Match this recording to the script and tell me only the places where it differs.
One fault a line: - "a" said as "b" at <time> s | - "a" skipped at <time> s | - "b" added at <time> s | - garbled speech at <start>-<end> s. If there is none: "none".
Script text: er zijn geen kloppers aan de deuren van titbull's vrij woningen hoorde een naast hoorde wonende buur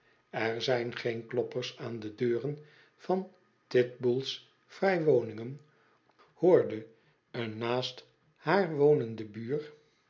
- "hoorde" said as "haar" at 8.4 s